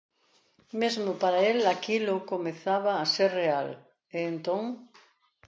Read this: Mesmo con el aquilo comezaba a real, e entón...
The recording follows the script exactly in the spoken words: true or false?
false